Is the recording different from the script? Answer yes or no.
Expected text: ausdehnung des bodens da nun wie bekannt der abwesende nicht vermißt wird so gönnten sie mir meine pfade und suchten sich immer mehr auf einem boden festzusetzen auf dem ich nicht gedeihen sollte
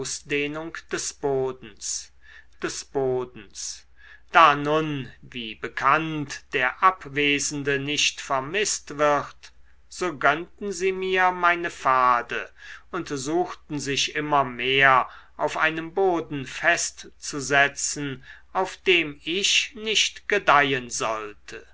yes